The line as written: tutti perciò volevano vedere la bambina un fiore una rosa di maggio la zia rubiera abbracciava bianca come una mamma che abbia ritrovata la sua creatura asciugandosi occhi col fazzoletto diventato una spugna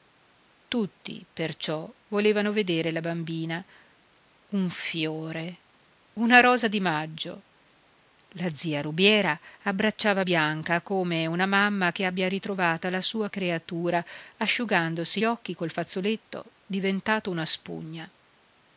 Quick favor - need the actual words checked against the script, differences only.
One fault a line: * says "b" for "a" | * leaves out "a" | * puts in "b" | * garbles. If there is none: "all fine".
all fine